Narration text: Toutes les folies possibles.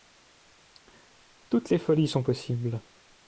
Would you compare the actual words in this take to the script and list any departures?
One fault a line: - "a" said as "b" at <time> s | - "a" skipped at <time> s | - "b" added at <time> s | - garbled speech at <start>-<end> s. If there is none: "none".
- "sont" added at 2.1 s